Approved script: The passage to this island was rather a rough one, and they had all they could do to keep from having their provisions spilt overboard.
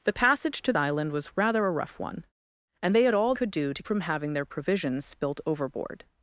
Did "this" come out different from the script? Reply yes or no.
yes